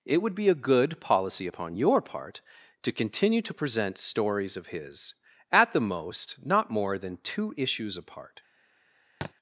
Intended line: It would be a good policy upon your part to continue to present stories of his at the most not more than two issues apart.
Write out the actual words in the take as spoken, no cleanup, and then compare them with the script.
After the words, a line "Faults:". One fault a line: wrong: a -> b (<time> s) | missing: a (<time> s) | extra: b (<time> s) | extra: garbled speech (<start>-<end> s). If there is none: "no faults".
It would be a good policy upon your part to continue to present stories of his at the most not more than two issues apart.
Faults:
no faults